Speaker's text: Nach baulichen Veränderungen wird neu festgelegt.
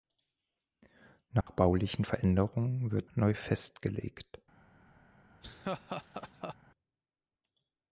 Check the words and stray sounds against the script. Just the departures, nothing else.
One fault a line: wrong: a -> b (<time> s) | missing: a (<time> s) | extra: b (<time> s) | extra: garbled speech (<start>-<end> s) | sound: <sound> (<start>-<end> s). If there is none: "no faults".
sound: dropout (1.4-1.5 s)
sound: laugh (5.4-6.6 s)